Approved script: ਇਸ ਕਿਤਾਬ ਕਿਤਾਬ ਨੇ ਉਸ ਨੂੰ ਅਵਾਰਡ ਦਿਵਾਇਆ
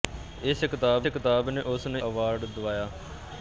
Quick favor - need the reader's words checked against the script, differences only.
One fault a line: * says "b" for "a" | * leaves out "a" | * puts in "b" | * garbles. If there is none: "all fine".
all fine